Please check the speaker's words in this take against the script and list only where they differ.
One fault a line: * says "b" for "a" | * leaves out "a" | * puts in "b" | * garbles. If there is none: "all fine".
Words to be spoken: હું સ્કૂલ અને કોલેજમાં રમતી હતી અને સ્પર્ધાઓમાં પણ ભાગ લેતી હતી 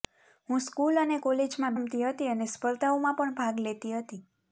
all fine